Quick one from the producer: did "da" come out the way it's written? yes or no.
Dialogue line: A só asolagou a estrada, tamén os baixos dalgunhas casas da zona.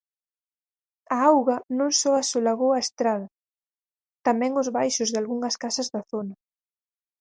yes